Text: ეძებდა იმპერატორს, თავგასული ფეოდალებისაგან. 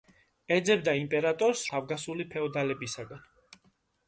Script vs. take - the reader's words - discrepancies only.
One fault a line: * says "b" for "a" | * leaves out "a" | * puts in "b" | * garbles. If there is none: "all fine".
all fine